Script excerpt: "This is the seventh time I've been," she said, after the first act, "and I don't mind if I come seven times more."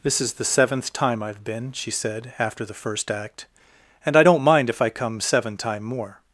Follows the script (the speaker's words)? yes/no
no